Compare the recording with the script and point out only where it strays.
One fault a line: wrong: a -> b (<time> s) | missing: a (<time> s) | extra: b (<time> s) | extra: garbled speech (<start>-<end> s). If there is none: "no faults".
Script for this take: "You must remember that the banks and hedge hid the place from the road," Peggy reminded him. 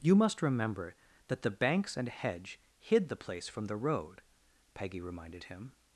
no faults